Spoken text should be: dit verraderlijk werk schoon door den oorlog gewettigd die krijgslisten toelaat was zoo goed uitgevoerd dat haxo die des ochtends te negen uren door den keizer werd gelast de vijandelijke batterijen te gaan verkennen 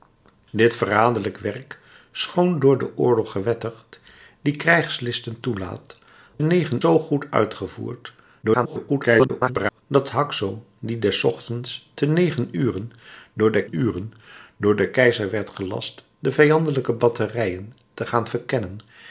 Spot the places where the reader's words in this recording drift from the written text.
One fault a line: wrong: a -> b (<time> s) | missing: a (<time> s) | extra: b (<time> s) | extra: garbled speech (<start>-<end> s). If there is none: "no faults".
wrong: was -> negen (6.4 s)
extra: garbled speech (8.4-9.8 s)
extra: uren door den (13.7 s)